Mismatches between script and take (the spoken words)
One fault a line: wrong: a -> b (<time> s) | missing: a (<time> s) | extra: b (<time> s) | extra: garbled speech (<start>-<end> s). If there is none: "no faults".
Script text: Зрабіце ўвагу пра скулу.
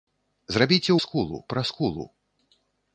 wrong: ўвагу -> скулу (1.1 s)